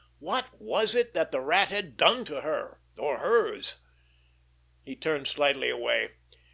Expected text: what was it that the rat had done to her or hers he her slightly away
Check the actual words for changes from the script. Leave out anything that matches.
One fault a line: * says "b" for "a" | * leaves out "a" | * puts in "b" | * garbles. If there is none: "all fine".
* says "turned" for "her"